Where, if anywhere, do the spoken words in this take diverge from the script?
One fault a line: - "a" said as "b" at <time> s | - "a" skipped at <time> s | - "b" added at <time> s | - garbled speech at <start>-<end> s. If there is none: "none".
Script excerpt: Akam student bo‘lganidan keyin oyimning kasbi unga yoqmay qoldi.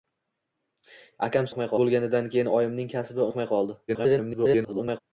- "student" said as "yoqmay" at 1.5 s
- "unga" skipped at 3.3 s
- garbled speech at 3.9-5.0 s